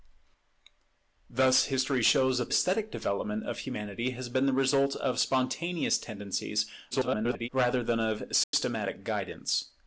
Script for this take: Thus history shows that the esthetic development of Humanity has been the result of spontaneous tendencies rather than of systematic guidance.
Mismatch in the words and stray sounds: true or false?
true